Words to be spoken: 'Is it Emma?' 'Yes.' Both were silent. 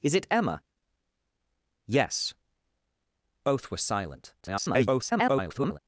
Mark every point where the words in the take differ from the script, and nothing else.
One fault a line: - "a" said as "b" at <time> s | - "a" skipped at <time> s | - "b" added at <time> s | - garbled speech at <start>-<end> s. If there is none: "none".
- garbled speech at 4.4-5.8 s